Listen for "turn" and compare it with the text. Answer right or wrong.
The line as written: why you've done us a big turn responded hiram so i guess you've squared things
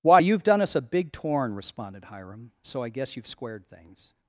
wrong